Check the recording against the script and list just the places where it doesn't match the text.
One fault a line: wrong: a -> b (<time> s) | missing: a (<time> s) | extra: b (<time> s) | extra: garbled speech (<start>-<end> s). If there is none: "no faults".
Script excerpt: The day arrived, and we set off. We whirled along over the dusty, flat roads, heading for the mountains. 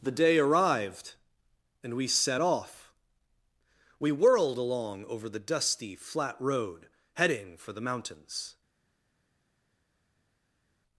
wrong: roads -> road (6.4 s)